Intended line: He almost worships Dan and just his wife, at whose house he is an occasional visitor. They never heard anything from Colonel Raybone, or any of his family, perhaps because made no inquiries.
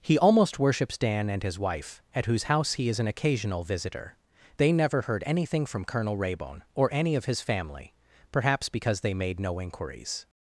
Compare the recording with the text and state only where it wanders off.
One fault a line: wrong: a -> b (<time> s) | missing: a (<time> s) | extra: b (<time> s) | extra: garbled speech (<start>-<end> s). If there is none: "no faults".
missing: just (1.4 s)
extra: they (9.0 s)